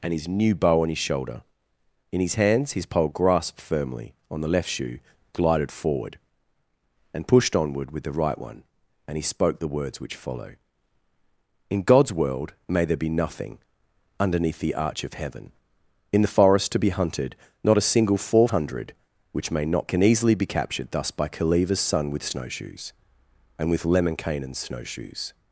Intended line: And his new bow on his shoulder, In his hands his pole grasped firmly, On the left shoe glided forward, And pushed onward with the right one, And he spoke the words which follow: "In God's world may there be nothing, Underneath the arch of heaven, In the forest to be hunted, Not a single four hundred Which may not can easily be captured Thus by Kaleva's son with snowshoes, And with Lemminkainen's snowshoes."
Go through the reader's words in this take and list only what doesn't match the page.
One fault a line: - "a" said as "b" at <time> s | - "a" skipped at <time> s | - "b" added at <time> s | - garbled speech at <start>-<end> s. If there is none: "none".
none